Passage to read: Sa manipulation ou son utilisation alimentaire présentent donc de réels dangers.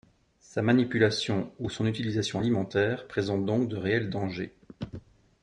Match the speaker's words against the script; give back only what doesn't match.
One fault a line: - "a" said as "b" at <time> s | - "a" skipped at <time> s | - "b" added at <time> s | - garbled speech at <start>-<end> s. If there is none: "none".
none